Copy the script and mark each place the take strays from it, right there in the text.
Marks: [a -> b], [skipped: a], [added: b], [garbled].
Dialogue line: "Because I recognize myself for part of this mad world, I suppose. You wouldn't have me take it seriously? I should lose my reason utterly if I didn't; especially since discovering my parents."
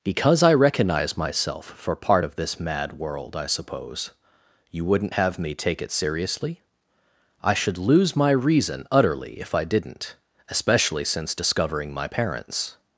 "Because I recognize myself for part of this mad world, I suppose. You wouldn't have me take it seriously? I should lose my reason utterly if I didn't; especially since discovering my parents."